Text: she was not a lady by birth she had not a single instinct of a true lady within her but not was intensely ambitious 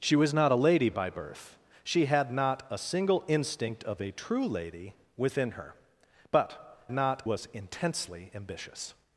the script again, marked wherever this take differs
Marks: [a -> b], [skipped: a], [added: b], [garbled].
she was not a lady by birth she had not a single instinct of a true lady within her but not was intensely ambitious